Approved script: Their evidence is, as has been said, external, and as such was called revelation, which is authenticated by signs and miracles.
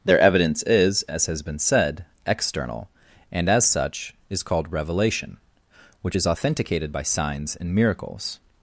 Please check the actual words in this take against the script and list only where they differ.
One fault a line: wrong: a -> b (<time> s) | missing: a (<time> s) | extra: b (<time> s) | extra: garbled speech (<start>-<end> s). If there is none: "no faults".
wrong: was -> is (4.3 s)